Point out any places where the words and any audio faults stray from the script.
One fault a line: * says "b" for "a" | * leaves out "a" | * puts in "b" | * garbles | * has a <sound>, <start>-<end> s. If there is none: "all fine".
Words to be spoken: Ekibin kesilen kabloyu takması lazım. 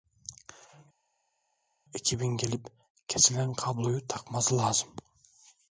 * puts in "gelip"